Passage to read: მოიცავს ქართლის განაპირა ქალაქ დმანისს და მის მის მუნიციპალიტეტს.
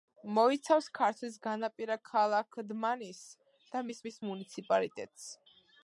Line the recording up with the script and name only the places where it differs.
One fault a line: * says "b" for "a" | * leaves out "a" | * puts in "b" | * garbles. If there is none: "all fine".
all fine